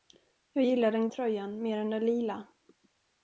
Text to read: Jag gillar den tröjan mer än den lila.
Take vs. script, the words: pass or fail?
pass